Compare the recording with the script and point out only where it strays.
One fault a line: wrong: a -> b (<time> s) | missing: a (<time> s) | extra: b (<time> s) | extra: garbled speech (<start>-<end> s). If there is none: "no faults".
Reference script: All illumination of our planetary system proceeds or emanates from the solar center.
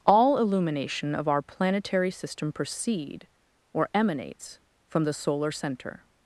wrong: proceeds -> proceed (2.5 s)